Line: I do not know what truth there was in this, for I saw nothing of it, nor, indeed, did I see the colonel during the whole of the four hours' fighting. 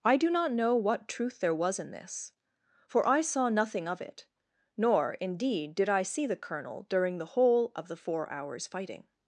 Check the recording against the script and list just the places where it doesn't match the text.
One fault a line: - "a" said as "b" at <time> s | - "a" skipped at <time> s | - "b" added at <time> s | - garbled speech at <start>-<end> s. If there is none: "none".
none